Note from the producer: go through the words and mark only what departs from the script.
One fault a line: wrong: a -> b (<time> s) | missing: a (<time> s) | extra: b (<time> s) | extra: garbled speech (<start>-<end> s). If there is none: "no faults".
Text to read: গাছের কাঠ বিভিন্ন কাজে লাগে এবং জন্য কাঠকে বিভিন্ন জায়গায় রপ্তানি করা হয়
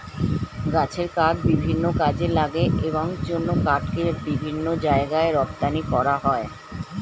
no faults